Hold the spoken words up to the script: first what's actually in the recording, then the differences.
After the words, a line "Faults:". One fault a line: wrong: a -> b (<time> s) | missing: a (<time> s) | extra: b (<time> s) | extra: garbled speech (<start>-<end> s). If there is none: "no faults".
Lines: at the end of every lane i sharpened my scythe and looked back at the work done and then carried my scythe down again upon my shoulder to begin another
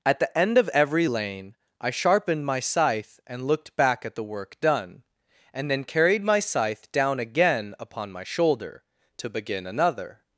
at the end of every lane i sharpened my scythe and looked back at the work done and then carried my scythe down again upon my shoulder to begin another
Faults:
no faults